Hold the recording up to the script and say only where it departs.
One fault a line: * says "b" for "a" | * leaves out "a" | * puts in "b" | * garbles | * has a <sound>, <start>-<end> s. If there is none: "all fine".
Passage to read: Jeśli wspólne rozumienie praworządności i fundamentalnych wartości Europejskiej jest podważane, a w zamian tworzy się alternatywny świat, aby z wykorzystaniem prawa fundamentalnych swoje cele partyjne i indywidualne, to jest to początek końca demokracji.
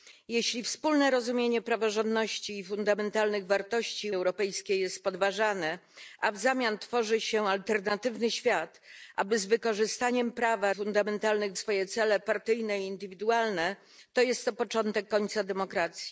all fine